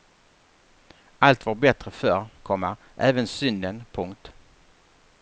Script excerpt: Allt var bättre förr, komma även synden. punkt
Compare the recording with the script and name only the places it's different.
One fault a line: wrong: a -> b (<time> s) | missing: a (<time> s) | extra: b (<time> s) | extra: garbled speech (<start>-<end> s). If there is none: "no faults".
no faults